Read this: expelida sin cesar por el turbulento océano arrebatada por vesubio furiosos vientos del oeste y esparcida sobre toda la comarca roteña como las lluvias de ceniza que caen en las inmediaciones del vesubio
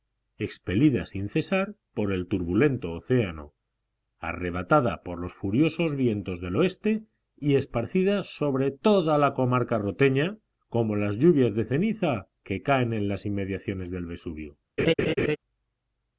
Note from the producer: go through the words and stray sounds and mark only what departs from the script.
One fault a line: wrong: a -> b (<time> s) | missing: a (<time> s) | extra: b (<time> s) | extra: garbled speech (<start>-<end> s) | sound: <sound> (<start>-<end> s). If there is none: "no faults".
wrong: vesubio -> los (5.2 s)
sound: laugh (14.8-15.4 s)